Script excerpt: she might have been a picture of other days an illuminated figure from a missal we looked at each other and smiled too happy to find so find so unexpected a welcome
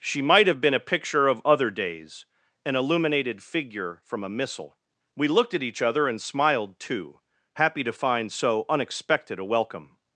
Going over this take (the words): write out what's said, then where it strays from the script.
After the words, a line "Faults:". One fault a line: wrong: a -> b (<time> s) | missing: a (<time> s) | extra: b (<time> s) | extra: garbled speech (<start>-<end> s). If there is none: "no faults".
she might have been a picture of other days an illuminated figure from a missal we looked at each other and smiled too happy to find so unexpected a welcome
Faults:
missing: find so (8.7 s)